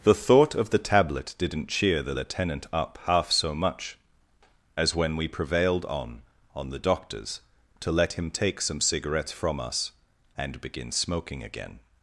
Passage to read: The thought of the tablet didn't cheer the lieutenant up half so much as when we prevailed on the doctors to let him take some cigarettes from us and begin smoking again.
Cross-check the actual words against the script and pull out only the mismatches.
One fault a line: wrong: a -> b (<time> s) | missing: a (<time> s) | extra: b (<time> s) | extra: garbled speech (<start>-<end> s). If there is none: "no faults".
extra: on (6.5 s)